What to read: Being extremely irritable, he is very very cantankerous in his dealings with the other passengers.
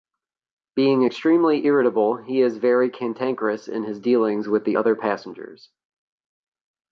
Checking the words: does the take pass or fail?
fail